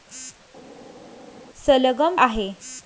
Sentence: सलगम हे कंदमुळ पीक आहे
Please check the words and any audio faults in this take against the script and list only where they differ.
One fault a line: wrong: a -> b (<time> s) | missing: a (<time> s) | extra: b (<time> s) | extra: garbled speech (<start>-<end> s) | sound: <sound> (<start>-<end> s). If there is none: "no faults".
missing: हे कंदमुळ पीक (2.2 s)